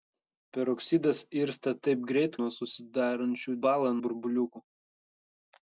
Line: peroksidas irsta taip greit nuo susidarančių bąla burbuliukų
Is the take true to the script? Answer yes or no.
yes